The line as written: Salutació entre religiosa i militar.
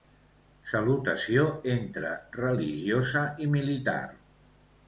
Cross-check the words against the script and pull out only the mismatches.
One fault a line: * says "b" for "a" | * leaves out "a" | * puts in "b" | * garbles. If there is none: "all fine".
all fine